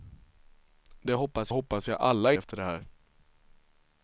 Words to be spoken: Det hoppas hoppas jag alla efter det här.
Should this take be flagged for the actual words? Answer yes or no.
no